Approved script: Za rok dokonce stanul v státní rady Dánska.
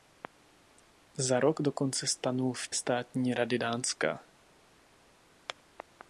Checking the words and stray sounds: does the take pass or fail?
pass